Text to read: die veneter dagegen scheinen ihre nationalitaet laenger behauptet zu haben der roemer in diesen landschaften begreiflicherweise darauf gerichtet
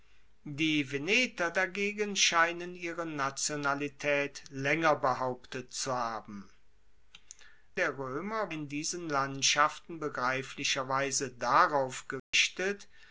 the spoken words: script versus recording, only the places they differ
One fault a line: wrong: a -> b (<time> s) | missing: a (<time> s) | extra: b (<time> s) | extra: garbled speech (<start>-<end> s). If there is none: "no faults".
no faults